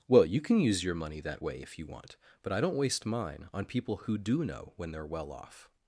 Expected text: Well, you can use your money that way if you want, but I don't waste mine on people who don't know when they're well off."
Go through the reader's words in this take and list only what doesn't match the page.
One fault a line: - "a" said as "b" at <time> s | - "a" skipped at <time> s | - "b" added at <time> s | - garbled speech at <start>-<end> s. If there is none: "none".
- "don't" said as "do" at 4.2 s